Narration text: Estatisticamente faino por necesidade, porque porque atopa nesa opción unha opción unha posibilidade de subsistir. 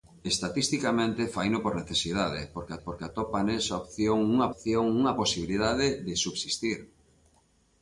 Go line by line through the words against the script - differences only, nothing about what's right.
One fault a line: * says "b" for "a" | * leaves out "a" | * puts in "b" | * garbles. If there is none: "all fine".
all fine